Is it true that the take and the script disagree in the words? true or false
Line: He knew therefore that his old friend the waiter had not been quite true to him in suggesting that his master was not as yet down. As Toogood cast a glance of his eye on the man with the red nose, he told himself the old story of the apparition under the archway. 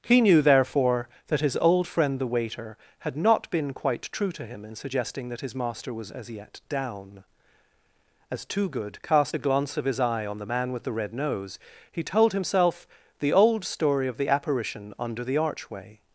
true